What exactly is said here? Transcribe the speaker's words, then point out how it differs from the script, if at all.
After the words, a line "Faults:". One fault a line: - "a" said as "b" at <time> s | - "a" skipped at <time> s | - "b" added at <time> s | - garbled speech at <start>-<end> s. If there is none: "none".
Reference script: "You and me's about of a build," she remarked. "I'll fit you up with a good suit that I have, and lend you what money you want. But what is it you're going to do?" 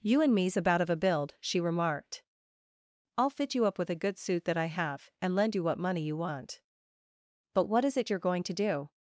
"You and me's about of a build," she remarked. "I'll fit you up with a good suit that I have, and lend you what money you want. But what is it you're going to do?"
Faults:
none